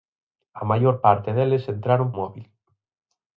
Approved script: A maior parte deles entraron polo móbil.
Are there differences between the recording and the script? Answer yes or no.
yes